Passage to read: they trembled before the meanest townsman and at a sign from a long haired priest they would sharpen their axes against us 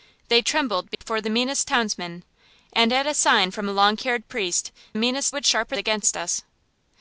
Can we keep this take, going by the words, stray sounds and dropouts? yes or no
no